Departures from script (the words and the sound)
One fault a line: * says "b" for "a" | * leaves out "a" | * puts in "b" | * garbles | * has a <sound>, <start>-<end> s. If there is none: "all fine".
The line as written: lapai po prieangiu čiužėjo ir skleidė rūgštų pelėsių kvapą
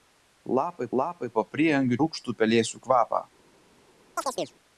* puts in "lapai"
* leaves out "čiužėjo ir skleidė"
* has a chirp, 4.2-4.5 s